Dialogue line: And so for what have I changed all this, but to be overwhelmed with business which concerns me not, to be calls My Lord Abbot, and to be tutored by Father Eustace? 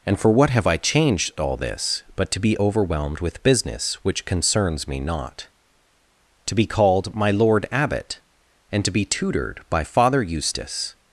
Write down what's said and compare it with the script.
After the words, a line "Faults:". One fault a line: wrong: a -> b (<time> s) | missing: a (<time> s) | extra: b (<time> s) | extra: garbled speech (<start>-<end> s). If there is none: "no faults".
And for what have I changed all this, but to be overwhelmed with business which concerns me not, to be called My Lord Abbot, and to be tutored by Father Eustace?
Faults:
missing: so (0.2 s)
wrong: calls -> called (6.7 s)